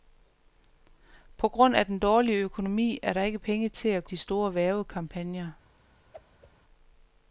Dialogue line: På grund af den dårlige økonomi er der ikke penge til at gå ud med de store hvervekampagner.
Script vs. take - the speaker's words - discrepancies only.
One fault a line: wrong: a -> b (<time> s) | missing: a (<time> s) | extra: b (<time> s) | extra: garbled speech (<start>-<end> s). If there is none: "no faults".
missing: gå ud med (4.0 s)